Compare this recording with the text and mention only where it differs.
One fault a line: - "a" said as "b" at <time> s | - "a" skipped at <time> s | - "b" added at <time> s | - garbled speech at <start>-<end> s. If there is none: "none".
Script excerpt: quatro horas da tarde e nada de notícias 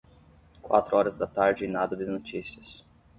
none